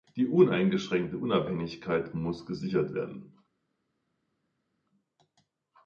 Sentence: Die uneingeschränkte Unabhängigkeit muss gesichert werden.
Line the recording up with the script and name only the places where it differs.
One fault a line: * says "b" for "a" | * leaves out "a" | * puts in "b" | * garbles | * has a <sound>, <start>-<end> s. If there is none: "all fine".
all fine